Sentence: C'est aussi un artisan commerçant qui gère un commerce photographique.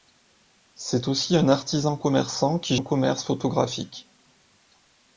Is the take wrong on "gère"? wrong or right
wrong